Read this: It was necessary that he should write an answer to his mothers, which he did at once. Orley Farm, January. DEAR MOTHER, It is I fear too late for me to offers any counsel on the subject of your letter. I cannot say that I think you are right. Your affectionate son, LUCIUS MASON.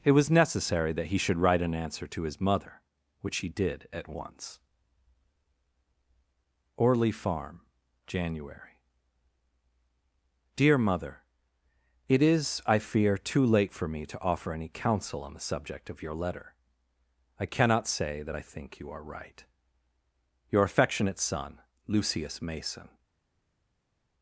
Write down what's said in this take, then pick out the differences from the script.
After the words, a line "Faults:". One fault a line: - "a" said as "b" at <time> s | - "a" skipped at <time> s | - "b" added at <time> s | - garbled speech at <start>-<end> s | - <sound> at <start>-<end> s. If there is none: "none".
It was necessary that he should write an answer to his mother, which he did at once. Orley Farm, January. DEAR MOTHER, It is I fear too late for me to offer any counsel on the subject of your letter. I cannot say that I think you are right. Your affectionate son, LUCIUS MASON.
Faults:
- "mothers" said as "mother" at 2.4 s
- "offers" said as "offer" at 14.2 s